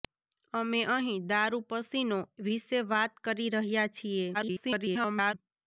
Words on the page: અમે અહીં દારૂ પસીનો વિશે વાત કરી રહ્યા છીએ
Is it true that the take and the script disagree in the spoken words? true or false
true